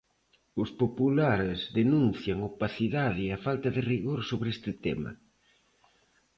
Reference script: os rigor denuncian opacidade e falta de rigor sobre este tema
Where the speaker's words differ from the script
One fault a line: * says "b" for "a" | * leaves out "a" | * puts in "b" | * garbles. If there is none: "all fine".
* says "populares" for "rigor"